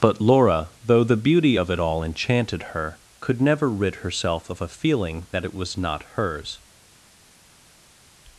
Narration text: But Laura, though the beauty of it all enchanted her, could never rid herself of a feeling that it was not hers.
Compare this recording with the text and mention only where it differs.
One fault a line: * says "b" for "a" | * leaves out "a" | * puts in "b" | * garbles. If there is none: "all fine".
all fine